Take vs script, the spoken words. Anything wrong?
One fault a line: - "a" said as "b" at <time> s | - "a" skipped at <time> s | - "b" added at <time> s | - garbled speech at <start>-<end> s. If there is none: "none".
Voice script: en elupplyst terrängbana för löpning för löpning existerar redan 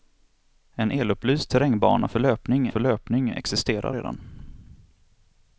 none